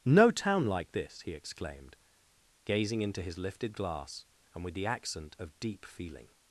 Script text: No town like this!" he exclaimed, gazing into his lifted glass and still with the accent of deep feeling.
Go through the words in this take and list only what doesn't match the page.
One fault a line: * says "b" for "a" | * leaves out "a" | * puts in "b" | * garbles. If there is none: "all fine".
* leaves out "still"